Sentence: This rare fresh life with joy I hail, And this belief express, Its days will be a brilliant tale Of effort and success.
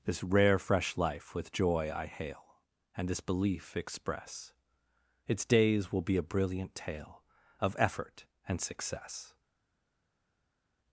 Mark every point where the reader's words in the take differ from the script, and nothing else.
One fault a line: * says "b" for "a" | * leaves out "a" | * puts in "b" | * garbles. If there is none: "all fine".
all fine